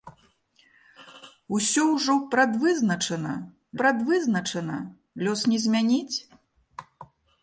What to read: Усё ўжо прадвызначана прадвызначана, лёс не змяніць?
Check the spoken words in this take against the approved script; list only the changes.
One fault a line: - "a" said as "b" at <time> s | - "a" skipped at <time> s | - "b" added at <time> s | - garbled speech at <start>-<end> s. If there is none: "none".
none